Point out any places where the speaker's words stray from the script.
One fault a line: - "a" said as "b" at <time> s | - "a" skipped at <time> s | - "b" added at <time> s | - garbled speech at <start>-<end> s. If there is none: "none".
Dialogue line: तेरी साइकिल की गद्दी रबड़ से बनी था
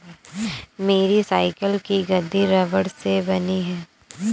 - "तेरी" said as "मेरी" at 0.8 s
- "था" said as "है" at 3.6 s